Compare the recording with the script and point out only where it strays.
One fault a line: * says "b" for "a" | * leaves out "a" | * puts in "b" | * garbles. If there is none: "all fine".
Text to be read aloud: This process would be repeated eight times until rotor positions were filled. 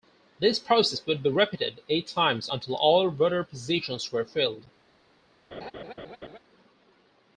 * puts in "all"